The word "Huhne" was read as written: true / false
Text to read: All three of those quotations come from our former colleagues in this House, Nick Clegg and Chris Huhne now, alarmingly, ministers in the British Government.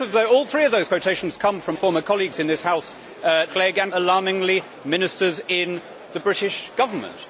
false